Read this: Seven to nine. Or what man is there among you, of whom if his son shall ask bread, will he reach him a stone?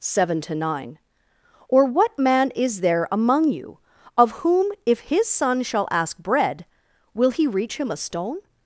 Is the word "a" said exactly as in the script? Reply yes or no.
yes